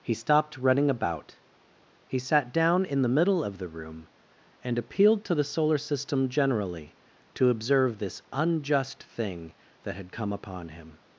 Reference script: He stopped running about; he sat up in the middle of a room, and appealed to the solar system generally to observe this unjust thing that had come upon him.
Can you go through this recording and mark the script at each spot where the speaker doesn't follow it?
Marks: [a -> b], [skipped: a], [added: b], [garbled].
He stopped running about; he sat [up -> down] in the middle of [a -> the] room, and appealed to the solar system generally to observe this unjust thing that had come upon him.